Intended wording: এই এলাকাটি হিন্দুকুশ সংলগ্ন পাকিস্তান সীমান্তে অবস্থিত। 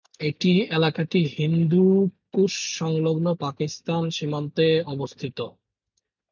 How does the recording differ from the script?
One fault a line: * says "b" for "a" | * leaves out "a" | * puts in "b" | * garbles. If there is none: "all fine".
all fine